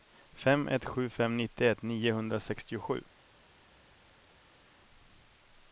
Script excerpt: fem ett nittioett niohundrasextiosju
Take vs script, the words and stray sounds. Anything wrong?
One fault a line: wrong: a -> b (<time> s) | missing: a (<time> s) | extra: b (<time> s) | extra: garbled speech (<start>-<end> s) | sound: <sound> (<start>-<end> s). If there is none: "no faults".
extra: sju fem (0.8 s)